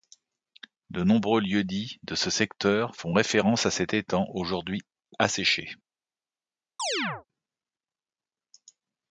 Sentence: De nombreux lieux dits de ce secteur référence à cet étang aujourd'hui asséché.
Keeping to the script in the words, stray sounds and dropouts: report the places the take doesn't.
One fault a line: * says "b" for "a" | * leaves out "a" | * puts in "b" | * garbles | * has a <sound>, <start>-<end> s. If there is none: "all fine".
* puts in "font"
* has a chirp, 6.8-7.3 s